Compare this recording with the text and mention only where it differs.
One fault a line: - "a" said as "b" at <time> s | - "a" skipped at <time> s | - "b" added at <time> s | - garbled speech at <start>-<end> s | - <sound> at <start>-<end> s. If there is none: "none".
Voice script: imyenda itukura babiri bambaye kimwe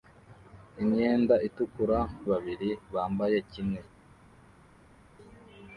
none